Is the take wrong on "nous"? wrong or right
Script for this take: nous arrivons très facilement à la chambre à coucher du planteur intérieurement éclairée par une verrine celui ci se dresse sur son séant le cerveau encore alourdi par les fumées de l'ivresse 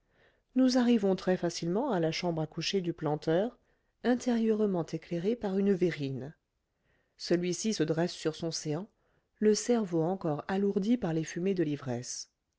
right